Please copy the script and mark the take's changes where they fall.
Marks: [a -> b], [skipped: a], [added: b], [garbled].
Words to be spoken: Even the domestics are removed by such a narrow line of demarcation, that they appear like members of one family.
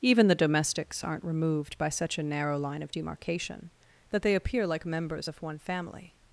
Even the domestics [are -> aren't] removed by such a narrow line of demarcation, that they appear like members of one family.